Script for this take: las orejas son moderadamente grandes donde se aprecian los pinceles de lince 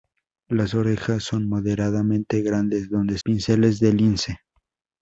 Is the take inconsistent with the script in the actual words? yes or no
yes